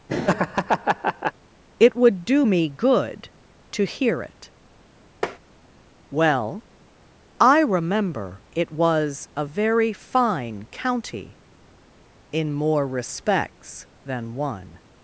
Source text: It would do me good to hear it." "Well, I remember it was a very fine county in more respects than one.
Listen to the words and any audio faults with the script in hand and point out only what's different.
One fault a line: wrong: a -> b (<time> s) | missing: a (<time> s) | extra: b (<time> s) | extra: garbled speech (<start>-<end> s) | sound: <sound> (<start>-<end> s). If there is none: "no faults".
sound: laugh (0.1-1.3 s)
sound: tap (5.2-5.4 s)